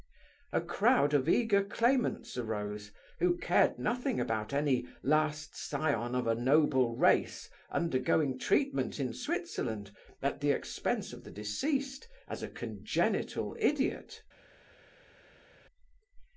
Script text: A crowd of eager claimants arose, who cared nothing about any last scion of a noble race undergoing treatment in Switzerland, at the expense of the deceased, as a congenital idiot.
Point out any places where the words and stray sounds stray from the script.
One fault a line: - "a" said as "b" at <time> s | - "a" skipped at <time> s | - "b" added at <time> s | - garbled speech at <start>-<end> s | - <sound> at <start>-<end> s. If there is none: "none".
none